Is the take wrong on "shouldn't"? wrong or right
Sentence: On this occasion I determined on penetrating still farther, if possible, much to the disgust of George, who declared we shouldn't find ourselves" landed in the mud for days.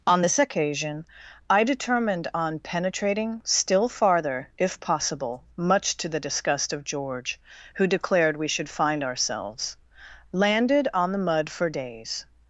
wrong